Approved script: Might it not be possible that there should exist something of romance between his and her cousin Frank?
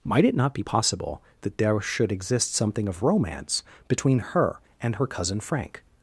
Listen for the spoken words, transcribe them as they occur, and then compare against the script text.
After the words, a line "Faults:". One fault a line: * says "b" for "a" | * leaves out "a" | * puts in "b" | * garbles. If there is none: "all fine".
Might it not be possible that there should exist something of romance between her and her cousin Frank?
Faults:
* says "her" for "his"